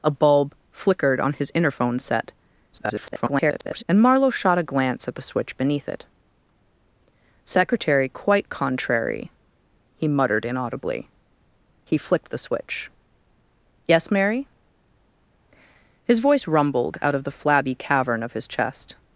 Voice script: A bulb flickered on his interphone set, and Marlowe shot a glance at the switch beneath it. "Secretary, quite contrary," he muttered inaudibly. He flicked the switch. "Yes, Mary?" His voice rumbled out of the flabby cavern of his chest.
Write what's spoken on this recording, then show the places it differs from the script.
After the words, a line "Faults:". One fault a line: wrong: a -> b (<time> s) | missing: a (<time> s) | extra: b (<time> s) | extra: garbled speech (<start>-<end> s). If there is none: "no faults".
A bulb flickered on his interphone set, [garbled] and Marlowe shot a glance at the switch beneath it. "Secretary, quite contrary," he muttered inaudibly. He flicked the switch. "Yes, Mary?" His voice rumbled out of the flabby cavern of his chest.
Faults:
extra: garbled speech (2.7-3.8 s)